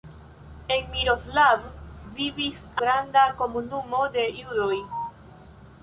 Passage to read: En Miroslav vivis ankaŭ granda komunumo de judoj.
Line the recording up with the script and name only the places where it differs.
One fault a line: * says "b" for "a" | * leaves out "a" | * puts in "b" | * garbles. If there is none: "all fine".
* leaves out "ankaŭ"